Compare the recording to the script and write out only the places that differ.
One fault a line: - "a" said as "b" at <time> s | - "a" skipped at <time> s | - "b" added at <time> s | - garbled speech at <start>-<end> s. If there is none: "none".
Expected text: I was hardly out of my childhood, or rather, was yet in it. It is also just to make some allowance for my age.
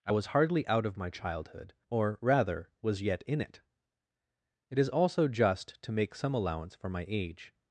none